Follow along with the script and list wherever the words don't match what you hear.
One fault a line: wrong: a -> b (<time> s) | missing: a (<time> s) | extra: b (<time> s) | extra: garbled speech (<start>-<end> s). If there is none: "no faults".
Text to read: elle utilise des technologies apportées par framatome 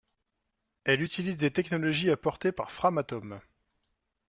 no faults